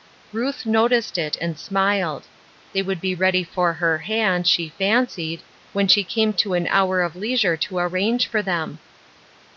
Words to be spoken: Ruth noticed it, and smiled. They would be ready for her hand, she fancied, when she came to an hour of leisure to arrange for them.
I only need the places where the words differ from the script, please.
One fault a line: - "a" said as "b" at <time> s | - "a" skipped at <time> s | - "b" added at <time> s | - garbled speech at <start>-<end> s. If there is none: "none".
none